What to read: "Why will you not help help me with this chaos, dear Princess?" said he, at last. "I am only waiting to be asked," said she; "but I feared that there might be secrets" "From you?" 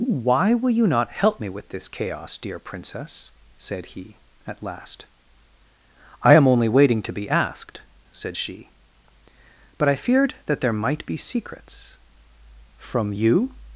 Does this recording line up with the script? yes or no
no